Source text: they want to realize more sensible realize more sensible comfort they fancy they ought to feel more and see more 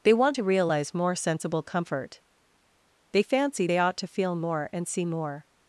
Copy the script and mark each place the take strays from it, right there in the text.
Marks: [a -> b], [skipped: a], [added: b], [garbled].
they want to realize more sensible [skipped: realize more sensible] comfort they fancy they ought to feel more and see more